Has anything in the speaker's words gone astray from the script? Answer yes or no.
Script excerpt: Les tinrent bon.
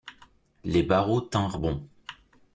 yes